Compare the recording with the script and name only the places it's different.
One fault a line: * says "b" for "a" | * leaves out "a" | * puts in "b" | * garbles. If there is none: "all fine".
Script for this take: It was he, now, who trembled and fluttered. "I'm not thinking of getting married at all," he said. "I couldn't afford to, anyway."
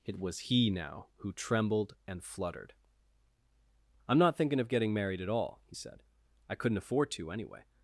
all fine